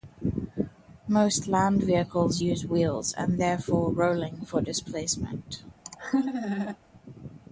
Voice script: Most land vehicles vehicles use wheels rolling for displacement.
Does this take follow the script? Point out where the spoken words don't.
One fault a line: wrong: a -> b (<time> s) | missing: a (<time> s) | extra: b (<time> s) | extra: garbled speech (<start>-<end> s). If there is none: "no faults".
missing: vehicles (2.4 s)
extra: and therefore (3.1 s)